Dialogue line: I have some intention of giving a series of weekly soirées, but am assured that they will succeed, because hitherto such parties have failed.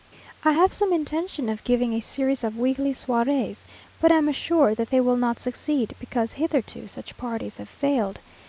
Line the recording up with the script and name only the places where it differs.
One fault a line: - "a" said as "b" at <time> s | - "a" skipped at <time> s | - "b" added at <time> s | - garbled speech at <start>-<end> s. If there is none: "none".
- "not" added at 5.2 s